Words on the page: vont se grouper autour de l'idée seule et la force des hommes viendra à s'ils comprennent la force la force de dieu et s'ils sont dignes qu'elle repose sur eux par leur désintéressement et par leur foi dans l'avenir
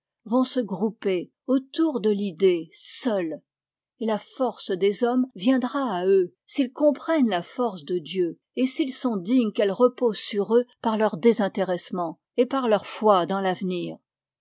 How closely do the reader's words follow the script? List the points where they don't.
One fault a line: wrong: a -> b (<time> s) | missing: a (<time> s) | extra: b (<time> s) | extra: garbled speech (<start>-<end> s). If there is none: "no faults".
extra: eux (6.1 s)
missing: la force (7.8 s)